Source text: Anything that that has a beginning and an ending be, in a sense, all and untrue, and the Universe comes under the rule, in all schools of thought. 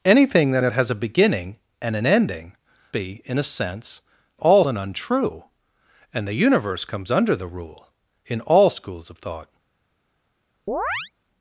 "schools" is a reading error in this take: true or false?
false